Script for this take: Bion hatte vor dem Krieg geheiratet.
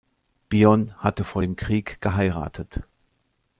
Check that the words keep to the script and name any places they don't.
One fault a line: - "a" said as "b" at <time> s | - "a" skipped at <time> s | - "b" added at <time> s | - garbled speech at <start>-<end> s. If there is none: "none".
none